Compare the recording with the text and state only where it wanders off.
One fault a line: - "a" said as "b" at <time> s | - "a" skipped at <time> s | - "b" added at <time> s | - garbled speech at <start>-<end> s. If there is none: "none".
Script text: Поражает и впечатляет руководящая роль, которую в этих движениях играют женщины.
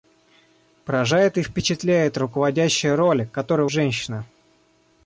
- "этих движениях играют" skipped at 3.7 s